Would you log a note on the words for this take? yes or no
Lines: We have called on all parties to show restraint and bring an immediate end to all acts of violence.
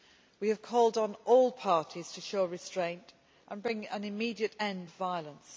yes